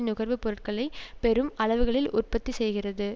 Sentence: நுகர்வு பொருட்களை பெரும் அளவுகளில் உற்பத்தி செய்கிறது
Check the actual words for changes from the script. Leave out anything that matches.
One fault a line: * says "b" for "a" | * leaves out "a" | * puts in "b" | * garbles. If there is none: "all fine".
all fine